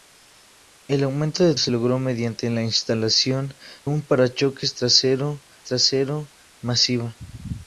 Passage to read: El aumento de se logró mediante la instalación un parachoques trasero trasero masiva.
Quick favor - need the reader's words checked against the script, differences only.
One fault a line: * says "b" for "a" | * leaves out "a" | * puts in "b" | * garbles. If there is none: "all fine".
all fine